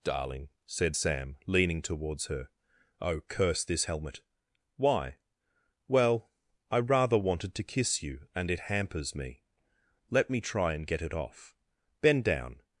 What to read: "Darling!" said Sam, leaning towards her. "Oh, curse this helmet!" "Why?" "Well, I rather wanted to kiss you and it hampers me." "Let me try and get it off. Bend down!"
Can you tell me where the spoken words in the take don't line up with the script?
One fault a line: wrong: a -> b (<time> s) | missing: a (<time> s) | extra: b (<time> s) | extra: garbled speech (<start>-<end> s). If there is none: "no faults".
no faults